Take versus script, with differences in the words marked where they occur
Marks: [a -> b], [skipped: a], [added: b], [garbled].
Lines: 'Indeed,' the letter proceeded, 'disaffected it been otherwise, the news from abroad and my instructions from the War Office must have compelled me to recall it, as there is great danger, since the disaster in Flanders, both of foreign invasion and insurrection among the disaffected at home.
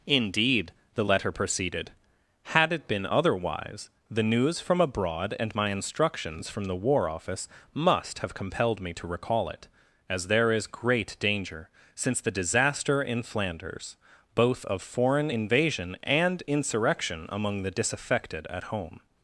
'Indeed,' the letter proceeded, ['disaffected -> had] it been otherwise, the news from abroad and my instructions from the War Office must have compelled me to recall it, as there is great danger, since the disaster in Flanders, both of foreign invasion and insurrection among the disaffected at home.